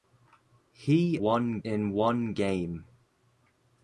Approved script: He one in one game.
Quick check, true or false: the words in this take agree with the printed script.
true